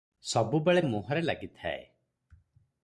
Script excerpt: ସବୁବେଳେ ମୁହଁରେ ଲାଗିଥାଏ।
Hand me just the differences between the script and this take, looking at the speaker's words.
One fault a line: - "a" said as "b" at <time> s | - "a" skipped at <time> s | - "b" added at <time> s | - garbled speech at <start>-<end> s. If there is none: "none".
none